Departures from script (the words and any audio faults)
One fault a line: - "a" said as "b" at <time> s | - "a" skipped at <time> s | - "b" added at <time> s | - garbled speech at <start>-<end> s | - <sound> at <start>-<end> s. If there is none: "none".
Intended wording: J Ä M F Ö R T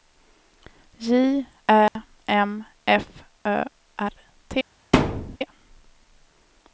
- dropout at 1.9-2.0 s
- thud at 4.9-5.4 s